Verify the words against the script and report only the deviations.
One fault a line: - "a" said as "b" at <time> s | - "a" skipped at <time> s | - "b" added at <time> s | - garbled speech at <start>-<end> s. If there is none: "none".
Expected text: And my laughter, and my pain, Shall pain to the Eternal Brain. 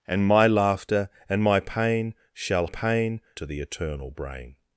none